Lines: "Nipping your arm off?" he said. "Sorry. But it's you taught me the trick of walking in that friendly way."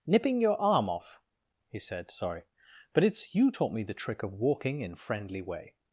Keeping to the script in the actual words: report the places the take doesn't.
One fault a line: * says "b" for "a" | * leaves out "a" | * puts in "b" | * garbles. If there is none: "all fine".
* leaves out "that"